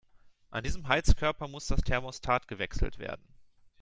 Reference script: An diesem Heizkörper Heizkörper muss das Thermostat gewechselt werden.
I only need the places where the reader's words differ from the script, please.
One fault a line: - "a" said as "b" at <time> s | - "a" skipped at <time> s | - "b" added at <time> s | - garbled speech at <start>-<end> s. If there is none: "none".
- "Heizkörper" skipped at 1.5 s